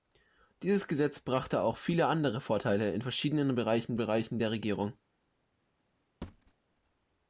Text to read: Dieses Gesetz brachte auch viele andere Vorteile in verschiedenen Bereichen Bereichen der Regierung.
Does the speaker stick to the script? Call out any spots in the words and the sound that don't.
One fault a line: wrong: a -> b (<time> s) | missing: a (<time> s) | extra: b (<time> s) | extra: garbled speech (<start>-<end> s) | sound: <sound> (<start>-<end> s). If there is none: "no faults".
sound: thud (6.2-6.5 s)